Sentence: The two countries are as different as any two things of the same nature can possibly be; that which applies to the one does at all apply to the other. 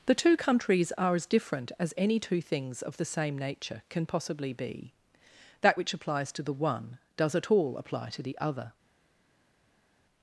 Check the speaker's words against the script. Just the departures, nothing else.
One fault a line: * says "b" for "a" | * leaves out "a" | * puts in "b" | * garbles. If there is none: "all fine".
all fine